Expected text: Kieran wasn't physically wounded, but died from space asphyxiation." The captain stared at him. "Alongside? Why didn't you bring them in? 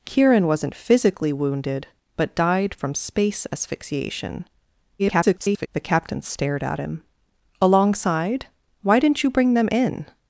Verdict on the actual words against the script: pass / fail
fail